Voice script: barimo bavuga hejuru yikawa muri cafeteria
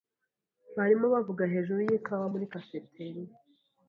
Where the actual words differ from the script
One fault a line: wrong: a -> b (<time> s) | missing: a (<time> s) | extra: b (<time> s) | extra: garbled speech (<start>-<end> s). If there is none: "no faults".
no faults